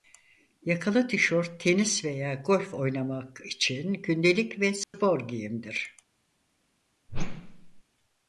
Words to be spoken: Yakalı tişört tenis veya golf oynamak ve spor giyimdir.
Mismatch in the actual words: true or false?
true